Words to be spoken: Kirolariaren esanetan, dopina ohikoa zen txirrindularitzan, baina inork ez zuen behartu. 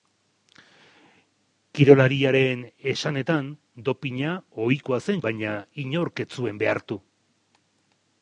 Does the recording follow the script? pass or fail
fail